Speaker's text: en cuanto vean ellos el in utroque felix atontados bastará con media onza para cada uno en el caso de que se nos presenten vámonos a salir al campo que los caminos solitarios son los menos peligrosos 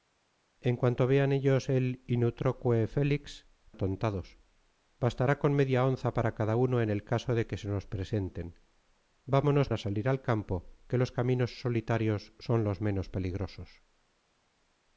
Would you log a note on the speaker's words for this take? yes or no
no